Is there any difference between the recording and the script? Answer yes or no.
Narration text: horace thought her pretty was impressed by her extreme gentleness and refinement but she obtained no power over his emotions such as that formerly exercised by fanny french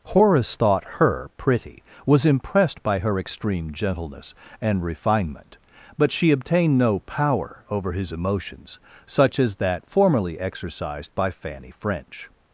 no